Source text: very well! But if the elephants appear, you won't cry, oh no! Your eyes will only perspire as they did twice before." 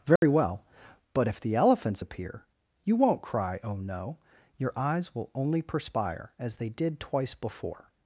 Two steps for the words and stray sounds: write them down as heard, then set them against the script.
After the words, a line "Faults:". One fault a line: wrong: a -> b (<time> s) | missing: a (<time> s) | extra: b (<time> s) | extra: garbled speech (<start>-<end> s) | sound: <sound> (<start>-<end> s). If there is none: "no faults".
very well! But if the elephants appear, you won't cry, oh no! Your eyes will only perspire as they did twice before."
Faults:
sound: dropout (0.2-0.2 s)